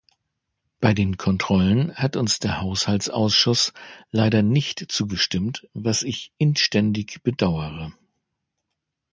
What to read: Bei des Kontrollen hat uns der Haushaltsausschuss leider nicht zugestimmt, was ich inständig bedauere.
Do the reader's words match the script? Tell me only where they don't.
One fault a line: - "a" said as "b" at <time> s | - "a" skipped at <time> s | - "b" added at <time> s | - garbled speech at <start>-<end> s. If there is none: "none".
- "des" said as "den" at 0.9 s